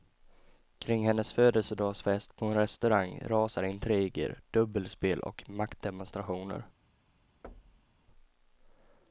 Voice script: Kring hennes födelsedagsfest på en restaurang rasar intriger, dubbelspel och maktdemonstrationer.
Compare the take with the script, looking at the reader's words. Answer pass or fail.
pass